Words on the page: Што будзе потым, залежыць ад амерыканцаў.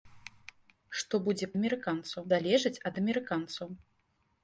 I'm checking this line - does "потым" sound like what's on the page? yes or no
no